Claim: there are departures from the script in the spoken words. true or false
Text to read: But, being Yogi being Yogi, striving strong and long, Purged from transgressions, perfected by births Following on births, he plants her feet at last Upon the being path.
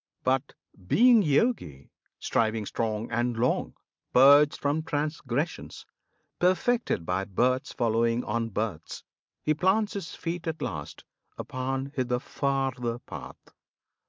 true